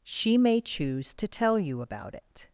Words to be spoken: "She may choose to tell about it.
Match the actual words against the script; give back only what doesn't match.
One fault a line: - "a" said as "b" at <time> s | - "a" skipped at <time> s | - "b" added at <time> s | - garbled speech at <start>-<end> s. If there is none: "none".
- "you" added at 1.6 s